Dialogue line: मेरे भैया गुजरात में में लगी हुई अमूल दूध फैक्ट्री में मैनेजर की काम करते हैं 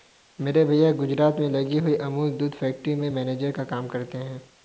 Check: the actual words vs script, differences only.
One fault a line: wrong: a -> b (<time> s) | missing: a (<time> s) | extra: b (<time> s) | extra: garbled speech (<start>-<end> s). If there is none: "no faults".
missing: में (1.5 s)
wrong: की -> का (3.5 s)